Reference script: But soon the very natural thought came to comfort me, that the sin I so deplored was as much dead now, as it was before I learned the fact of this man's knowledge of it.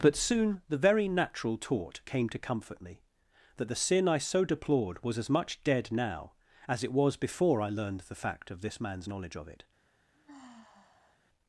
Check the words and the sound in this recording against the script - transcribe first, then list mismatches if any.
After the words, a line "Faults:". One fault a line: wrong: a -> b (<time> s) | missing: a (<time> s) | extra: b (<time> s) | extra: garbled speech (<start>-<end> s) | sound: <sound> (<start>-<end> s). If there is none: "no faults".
But soon the very natural taught came to comfort me, that the sin I so deplored was as much dead now, as it was before I learned the fact of this man's knowledge of it.
Faults:
wrong: thought -> taught (1.6 s)
sound: sigh (10.1-11.2 s)